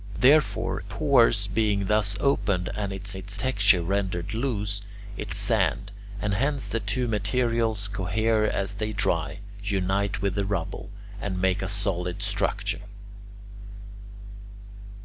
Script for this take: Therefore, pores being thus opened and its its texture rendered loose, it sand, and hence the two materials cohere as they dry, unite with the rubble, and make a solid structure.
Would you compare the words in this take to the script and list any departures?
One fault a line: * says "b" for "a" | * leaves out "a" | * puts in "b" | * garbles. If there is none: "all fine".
all fine